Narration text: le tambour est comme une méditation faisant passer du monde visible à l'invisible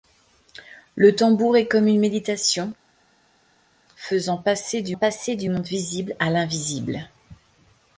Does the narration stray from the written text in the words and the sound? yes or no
yes